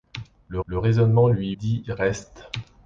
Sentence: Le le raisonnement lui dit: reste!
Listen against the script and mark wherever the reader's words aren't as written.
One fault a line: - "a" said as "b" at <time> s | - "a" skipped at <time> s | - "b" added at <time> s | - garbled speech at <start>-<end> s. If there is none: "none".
none